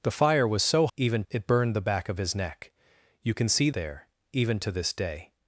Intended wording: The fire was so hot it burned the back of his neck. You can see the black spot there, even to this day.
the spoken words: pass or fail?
fail